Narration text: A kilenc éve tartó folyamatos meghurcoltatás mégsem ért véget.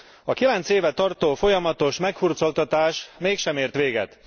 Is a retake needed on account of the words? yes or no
no